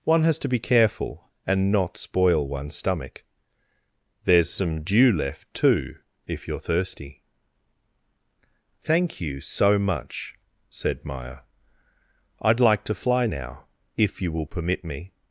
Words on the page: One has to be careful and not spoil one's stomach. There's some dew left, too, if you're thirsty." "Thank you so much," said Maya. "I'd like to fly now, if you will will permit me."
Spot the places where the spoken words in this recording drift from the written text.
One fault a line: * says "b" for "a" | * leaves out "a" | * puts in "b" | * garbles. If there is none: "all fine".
* leaves out "will"